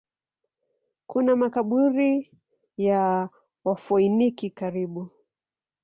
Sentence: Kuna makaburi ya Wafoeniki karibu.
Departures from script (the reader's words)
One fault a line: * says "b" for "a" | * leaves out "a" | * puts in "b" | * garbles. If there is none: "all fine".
all fine